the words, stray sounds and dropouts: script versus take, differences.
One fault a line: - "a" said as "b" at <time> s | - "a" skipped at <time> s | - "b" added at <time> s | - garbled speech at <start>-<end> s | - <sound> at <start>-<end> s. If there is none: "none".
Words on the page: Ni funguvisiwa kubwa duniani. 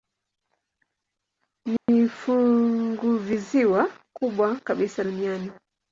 - dropout at 1.8-1.9 s
- "kabisa" added at 4.5 s